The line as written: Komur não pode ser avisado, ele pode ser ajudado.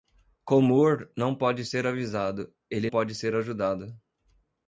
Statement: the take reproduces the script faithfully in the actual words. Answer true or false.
true